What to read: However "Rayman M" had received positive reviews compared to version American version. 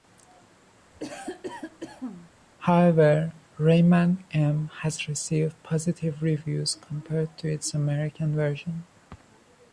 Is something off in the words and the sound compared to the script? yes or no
yes